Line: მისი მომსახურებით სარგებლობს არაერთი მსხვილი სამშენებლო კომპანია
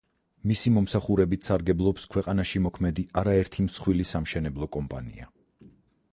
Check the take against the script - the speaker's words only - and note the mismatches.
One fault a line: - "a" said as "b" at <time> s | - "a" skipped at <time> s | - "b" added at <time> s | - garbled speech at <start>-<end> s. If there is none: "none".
- "ქვეყანაში მოქმედი" added at 2.1 s